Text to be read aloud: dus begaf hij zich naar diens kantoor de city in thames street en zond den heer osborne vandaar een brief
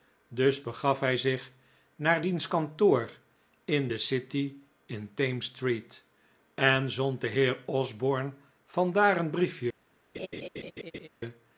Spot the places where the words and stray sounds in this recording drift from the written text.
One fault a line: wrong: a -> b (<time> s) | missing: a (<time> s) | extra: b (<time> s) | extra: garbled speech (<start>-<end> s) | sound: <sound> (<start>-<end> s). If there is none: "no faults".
extra: in (3.6 s)
sound: laugh (10.1-11.1 s)